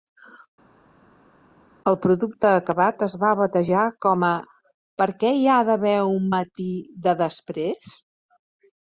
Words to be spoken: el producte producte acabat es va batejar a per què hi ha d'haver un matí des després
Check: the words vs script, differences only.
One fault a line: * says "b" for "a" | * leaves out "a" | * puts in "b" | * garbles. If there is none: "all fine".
* leaves out "producte"
* puts in "com"
* says "de" for "des"